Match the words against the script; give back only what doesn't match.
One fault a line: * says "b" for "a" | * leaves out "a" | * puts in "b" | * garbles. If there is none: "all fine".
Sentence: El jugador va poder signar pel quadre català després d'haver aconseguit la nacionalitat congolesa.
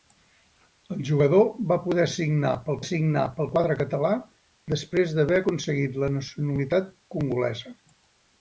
* puts in "signar pel"